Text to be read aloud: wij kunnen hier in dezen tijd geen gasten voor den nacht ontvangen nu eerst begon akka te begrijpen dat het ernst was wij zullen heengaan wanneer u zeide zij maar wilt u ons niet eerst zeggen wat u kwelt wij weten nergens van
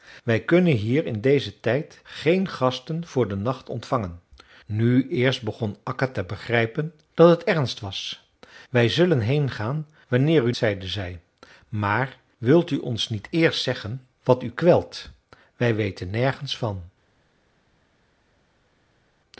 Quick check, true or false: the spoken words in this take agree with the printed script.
true